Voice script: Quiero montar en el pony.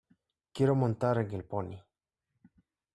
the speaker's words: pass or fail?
pass